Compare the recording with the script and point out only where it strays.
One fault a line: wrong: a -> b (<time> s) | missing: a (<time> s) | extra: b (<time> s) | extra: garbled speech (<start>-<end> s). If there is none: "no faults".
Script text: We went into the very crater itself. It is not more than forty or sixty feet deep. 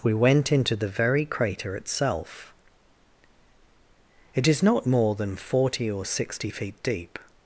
no faults